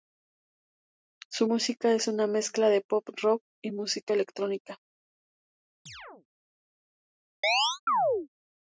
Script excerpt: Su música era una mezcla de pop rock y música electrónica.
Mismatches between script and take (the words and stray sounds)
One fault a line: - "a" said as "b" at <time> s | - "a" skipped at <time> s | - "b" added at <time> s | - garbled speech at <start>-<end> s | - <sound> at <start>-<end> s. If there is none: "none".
- "era" said as "es" at 1.9 s
- chirp at 5.9-6.3 s
- chirp at 7.4-8.3 s